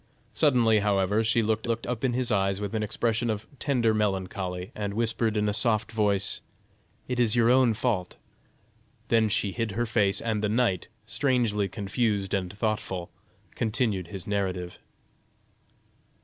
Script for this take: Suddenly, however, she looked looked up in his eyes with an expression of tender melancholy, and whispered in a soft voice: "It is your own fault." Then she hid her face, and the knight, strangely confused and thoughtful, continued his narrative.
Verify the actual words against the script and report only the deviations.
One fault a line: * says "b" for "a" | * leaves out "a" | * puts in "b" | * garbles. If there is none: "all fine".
all fine